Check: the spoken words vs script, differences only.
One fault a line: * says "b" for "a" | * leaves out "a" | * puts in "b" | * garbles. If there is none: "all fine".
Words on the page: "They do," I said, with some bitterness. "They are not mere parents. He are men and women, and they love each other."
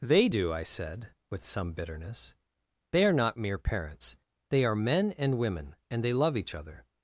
* says "They" for "He"